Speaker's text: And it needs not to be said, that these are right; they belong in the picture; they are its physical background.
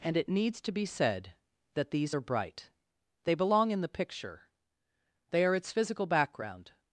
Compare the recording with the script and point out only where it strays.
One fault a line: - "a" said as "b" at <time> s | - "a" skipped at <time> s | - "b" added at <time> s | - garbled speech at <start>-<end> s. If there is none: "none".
- "not" skipped at 0.6 s
- "right" said as "bright" at 2.2 s